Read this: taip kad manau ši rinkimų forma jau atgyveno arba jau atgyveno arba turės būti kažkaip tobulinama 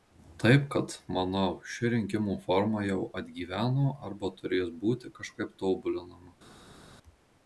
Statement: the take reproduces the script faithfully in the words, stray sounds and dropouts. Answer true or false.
false